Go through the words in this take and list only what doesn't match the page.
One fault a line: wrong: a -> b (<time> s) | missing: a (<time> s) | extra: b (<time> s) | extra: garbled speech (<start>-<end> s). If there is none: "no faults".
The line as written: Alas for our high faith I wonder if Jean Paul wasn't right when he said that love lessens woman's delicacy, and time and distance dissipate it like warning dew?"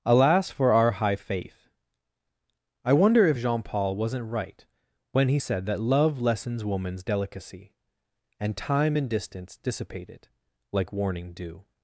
no faults